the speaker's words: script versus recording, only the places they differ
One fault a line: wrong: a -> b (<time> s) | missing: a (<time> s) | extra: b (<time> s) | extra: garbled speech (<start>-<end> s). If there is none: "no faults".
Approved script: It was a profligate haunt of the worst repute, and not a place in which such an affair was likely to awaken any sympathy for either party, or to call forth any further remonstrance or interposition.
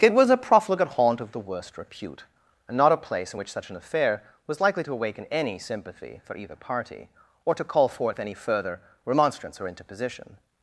no faults